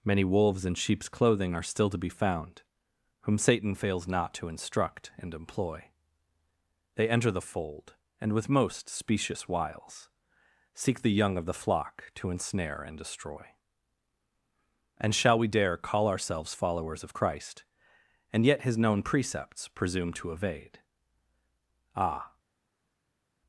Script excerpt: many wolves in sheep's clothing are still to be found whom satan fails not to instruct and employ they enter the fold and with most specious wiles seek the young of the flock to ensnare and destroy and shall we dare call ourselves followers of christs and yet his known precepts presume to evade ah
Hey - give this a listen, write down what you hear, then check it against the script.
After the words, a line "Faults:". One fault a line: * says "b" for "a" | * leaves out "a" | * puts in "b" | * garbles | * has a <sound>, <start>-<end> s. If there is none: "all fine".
many wolves in sheep's clothing are still to be found whom satan fails not to instruct and employ they enter the fold and with most specious wiles seek the young of the flock to ensnare and destroy and shall we dare call ourselves followers of christ and yet his known precepts presume to evade ah
Faults:
* says "christ" for "christs"